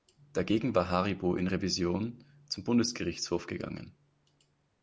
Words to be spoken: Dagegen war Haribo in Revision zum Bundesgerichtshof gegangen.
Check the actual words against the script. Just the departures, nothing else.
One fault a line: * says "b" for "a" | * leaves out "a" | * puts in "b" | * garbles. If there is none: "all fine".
all fine